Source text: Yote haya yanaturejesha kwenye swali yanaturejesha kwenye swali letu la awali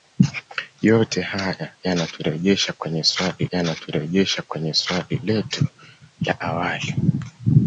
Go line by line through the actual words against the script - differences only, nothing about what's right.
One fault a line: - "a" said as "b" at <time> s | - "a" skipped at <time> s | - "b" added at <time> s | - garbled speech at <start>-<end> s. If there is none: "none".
none